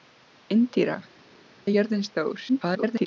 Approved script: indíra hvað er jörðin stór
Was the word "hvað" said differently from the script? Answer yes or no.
yes